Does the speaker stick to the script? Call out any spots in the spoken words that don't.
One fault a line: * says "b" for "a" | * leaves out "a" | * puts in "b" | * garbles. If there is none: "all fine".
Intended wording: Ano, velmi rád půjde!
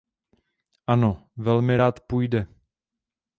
all fine